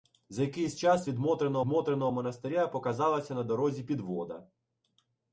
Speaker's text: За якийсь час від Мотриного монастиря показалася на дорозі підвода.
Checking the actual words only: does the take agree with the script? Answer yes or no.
no